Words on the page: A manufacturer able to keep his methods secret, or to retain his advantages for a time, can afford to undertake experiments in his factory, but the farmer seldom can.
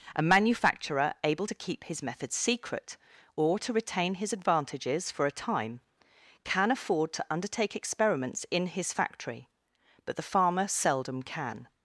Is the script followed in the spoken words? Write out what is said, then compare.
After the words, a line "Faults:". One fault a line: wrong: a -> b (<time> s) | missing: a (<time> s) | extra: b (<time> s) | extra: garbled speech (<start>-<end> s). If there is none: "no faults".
A manufacturer able to keep his methods secret, or to retain his advantages for a time, can afford to undertake experiments in his factory, but the farmer seldom can.
Faults:
no faults